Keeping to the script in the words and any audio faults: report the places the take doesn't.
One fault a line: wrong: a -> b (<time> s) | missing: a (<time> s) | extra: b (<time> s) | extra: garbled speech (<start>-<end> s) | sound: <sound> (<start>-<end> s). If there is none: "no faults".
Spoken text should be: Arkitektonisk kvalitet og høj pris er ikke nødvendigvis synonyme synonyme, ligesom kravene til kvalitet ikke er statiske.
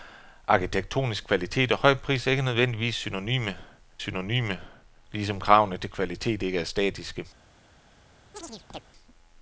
sound: chirp (8.3-8.8 s)